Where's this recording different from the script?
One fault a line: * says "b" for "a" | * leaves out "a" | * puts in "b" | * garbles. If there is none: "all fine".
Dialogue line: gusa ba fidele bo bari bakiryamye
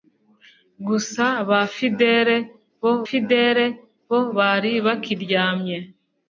* puts in "fidele bo"